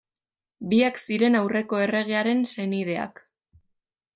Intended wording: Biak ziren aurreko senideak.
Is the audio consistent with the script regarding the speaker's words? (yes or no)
no